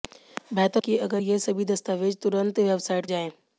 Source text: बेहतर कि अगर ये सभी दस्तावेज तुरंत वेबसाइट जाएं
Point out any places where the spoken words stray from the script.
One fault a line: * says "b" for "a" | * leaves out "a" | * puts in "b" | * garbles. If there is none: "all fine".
all fine